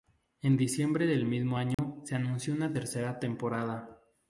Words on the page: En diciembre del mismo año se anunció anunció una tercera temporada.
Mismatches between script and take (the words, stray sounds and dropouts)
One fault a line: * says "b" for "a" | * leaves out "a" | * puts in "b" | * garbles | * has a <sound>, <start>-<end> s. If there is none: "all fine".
* has a dropout, 1.7-1.8 s
* leaves out "anunció"